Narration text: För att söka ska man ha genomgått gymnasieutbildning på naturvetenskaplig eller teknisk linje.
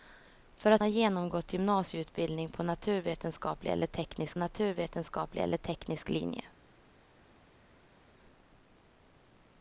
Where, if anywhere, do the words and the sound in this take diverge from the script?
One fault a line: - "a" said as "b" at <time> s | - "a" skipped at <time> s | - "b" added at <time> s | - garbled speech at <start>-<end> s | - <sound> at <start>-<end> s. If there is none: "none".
- "söka ska man" skipped at 0.8 s
- "naturvetenskaplig eller teknisk" added at 4.4 s